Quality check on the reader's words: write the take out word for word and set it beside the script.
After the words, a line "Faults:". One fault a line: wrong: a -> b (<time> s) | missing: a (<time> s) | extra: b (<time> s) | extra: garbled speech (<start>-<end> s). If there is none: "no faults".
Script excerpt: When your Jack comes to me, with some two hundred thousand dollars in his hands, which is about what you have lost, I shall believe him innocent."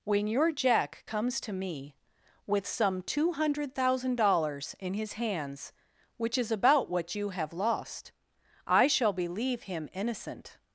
When your Jack comes to me, with some two hundred thousand dollars in his hands, which is about what you have lost, I shall believe him innocent."
Faults:
no faults